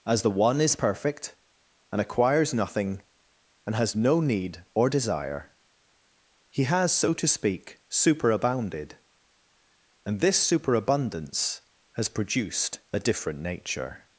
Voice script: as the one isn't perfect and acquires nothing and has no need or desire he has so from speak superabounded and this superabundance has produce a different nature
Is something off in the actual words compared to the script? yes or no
yes